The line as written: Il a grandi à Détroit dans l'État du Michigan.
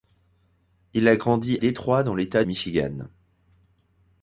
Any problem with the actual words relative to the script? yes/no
yes